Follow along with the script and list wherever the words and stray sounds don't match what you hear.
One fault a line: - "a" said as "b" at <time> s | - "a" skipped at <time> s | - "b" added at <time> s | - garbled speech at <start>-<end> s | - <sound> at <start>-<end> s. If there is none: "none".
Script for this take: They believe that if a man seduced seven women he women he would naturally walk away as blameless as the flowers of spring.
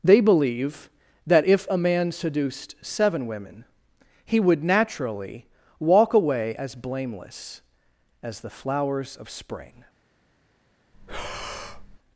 - "women he" skipped at 4.4 s
- breath at 10.9-12.0 s